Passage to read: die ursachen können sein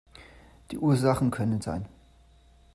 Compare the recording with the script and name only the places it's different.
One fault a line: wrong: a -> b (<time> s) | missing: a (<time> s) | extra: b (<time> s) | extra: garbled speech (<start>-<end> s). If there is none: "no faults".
no faults